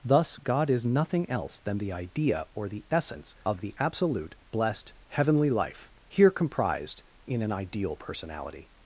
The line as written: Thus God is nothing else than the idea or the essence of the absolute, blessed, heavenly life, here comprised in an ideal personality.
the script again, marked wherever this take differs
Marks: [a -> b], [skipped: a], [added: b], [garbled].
Thus God is nothing else than the idea or the essence of the absolute, blessed, heavenly life, here comprised in an ideal personality.